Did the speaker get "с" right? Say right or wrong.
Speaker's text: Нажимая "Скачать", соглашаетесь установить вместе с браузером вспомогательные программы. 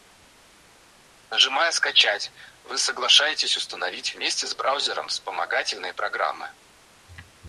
right